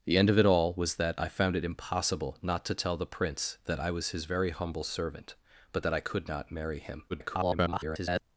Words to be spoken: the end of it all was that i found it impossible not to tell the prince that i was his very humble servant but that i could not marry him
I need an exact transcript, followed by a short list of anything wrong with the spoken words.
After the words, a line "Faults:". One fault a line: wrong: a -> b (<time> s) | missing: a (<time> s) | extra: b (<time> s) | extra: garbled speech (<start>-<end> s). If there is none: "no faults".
the end of it all was that i found it impossible not to tell the prince that i was his very humble servant but that i could not marry him [garbled]
Faults:
extra: garbled speech (7.1-8.2 s)